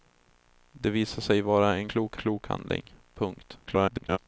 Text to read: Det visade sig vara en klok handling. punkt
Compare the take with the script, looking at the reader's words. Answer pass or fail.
fail